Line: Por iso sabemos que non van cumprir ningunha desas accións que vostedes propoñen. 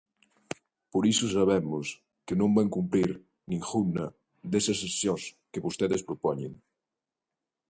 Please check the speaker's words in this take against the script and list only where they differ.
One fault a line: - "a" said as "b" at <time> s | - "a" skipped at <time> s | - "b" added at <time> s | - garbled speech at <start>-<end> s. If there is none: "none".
none